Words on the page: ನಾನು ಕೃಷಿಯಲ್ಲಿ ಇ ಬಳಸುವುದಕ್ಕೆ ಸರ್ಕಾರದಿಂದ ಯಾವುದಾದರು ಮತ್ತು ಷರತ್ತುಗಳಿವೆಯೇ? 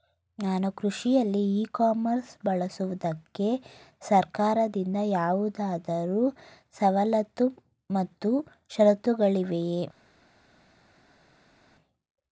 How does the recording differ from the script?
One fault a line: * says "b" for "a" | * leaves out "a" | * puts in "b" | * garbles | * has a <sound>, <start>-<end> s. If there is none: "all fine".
* puts in "ಕಾಮರ್ಸ್"
* puts in "ಸವಲತ್ತು"